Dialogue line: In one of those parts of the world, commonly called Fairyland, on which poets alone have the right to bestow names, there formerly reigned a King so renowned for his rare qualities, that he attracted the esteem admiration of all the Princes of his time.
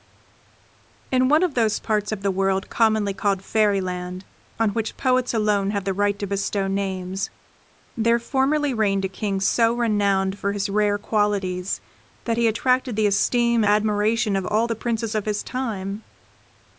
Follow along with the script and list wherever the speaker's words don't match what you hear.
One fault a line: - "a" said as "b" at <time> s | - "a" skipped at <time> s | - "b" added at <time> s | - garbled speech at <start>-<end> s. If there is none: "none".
none